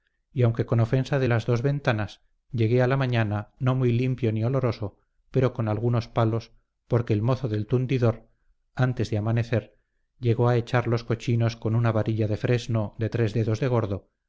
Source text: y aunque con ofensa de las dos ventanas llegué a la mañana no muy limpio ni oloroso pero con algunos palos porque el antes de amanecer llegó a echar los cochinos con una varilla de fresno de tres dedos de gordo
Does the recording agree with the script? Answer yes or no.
no